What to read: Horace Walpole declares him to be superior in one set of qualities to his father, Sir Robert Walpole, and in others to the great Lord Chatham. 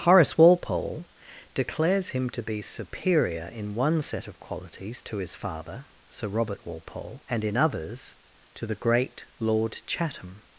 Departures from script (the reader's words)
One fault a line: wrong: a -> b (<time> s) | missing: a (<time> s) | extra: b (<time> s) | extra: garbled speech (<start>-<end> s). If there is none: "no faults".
no faults